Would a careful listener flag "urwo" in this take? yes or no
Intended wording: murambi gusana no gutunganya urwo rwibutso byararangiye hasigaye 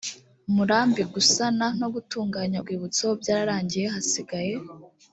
yes